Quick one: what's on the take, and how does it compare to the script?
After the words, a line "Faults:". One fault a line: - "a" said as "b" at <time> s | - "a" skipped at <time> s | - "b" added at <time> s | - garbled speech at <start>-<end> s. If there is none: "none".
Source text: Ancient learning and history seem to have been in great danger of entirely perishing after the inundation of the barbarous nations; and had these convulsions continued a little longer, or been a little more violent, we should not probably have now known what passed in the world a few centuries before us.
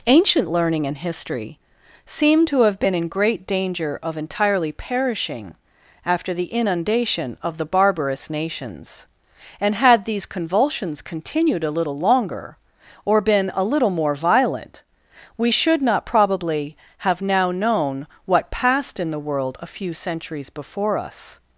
Ancient learning and history seem to have been in great danger of entirely perishing after the inundation of the barbarous nations; and had these convulsions continued a little longer, or been a little more violent, we should not probably have now known what passed in the world a few centuries before us.
Faults:
none